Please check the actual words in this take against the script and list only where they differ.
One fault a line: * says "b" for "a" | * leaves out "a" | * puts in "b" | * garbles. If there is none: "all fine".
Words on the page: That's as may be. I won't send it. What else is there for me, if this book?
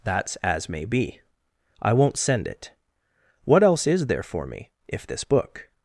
all fine